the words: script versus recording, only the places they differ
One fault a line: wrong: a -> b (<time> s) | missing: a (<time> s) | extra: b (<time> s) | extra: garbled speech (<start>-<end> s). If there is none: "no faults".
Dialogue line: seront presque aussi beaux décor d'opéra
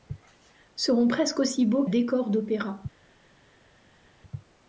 no faults